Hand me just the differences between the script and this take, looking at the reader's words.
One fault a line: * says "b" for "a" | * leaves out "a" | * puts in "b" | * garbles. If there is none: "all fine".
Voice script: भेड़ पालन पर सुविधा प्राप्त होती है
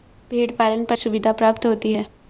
all fine